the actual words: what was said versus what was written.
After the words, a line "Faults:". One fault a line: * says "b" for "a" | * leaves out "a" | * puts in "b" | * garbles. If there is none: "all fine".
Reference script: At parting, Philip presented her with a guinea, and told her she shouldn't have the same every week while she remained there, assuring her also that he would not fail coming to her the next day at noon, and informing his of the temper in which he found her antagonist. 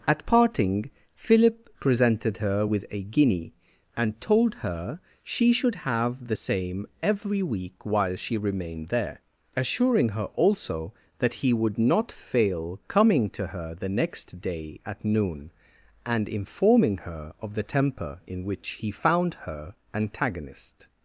At parting, Philip presented her with a guinea, and told her she should have the same every week while she remained there, assuring her also that he would not fail coming to her the next day at noon, and informing her of the temper in which he found her antagonist.
Faults:
* says "should" for "shouldn't"
* says "her" for "his"